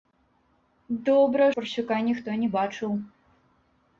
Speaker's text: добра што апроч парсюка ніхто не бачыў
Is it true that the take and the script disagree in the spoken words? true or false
true